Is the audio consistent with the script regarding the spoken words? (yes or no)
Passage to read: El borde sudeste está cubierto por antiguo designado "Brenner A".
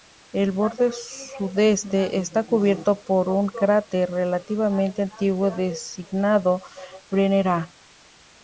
no